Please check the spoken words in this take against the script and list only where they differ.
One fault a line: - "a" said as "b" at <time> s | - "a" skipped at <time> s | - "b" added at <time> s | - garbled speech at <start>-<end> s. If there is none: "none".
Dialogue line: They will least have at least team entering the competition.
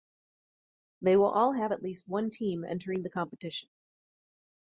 - "least" said as "all" at 1.3 s
- "one" added at 2.1 s